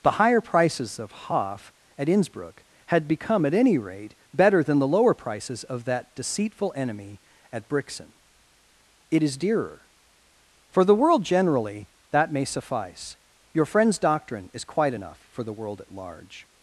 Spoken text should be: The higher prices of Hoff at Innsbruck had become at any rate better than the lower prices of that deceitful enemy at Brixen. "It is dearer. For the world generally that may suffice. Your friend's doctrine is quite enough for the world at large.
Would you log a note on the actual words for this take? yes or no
no